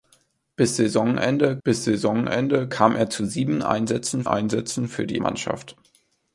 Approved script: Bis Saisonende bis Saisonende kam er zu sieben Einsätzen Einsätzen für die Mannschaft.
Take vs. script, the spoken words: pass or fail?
pass